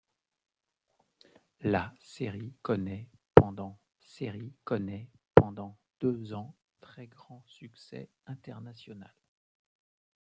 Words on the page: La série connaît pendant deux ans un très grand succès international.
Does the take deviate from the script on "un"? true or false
true